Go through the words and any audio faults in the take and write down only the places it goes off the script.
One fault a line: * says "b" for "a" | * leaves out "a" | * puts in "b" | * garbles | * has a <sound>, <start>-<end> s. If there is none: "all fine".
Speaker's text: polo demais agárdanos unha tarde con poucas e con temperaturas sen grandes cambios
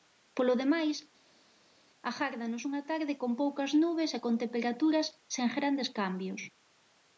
* puts in "nubes"